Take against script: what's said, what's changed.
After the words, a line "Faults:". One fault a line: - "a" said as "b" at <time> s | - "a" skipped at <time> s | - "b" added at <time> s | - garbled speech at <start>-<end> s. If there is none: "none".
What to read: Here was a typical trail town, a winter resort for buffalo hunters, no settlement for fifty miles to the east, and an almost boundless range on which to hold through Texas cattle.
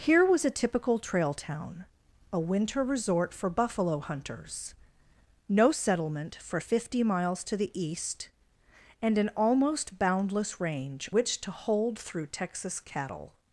Here was a typical trail town, a winter resort for buffalo hunters, no settlement for fifty miles to the east, and an almost boundless range which to hold through Texas cattle.
Faults:
- "on" skipped at 11.1 s